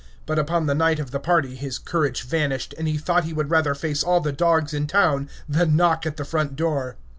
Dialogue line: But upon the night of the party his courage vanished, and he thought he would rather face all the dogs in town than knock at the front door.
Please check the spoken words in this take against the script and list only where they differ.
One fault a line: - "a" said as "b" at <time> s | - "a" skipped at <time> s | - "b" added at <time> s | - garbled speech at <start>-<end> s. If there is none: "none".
none